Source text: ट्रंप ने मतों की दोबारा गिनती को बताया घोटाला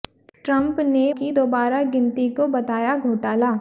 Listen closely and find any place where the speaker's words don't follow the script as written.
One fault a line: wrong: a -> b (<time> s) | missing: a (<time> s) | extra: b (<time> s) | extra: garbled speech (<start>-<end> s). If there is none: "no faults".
missing: मतों (1.0 s)